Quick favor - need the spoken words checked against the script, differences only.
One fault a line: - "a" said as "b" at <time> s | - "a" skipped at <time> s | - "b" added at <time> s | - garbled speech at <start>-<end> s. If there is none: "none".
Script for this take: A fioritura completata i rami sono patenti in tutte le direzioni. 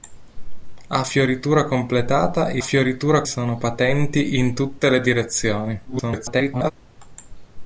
- "rami" said as "fioritura" at 2.6 s
- garbled speech at 5.8-6.7 s